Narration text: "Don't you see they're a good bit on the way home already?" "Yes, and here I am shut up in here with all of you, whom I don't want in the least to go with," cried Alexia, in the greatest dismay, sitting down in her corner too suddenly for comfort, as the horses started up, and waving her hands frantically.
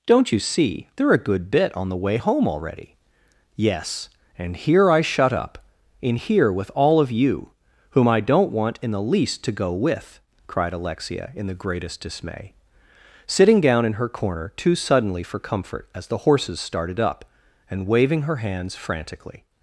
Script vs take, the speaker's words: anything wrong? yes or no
yes